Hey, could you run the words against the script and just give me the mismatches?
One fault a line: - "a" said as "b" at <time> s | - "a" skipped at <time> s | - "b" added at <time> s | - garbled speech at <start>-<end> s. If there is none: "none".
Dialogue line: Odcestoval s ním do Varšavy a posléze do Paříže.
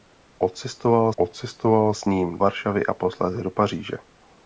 - "odcestoval" added at 1.2 s
- "do" skipped at 2.4 s